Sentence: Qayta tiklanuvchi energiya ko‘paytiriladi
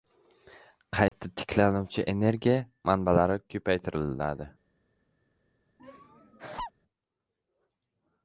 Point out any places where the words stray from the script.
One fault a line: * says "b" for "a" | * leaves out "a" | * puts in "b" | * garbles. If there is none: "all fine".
* puts in "manbalari"